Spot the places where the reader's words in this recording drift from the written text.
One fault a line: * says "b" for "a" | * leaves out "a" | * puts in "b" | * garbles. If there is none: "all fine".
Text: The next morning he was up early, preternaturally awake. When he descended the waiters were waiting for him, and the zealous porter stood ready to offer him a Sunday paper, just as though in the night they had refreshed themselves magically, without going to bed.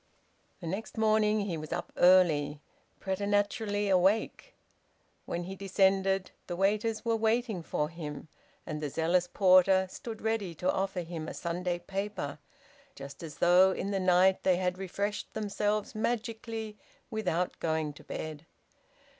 all fine